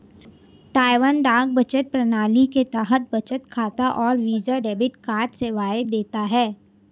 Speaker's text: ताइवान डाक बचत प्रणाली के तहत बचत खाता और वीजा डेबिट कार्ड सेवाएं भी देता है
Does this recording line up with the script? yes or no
no